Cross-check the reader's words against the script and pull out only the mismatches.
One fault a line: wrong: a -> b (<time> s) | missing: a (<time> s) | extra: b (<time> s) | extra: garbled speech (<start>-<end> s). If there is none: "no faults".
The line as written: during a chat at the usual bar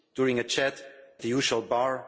missing: at (0.8 s)